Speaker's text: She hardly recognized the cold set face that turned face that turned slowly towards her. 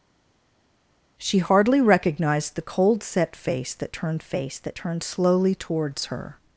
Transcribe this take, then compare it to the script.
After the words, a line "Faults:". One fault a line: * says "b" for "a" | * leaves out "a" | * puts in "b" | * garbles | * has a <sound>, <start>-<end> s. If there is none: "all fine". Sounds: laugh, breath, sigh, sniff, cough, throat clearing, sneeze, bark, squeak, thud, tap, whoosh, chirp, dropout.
She hardly recognized the cold set face that turned face that turned slowly towards her.
Faults:
all fine